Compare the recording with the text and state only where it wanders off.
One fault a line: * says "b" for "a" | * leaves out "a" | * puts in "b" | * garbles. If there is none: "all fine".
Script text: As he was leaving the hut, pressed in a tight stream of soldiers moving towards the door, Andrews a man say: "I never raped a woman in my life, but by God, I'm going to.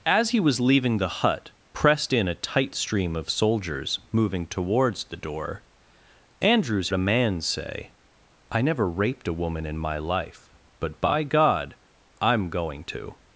all fine